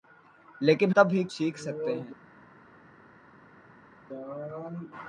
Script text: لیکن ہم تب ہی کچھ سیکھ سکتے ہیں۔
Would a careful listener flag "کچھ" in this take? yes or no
yes